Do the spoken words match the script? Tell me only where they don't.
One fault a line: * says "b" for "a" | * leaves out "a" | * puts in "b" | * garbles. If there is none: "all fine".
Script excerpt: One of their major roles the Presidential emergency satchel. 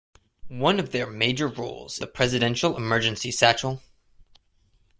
all fine